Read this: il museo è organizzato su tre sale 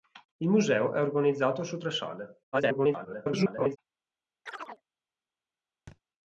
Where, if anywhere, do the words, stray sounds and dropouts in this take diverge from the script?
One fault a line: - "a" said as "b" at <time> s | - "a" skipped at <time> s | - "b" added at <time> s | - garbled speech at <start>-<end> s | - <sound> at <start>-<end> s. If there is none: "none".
- garbled speech at 2.5-3.8 s
- chirp at 4.5-4.8 s
- thud at 5.9-6.0 s